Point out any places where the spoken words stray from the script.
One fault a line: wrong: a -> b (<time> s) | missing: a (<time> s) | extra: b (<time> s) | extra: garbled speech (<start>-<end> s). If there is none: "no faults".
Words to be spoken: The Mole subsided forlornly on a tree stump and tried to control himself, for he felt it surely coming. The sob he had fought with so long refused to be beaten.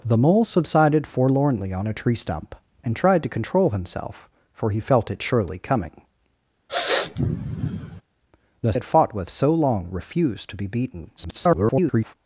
missing: sob he (8.7 s)
extra: garbled speech (11.2-12.1 s)